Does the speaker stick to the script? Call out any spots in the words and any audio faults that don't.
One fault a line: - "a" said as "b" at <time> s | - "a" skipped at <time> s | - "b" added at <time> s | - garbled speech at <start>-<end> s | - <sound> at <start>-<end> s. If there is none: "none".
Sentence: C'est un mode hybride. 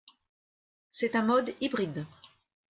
none